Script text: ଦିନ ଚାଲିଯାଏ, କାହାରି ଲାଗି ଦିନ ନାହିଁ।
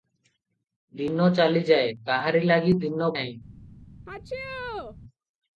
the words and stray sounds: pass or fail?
fail